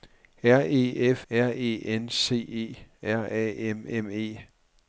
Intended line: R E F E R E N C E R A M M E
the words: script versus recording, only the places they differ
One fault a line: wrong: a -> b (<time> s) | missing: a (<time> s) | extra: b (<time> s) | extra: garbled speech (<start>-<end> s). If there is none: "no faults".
missing: E (1.3 s)